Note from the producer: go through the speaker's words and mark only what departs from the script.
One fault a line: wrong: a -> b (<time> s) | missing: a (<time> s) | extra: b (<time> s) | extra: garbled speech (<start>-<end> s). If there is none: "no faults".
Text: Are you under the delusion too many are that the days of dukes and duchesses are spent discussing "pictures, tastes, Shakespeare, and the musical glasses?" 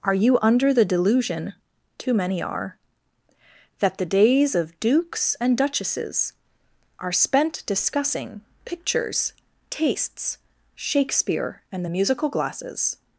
no faults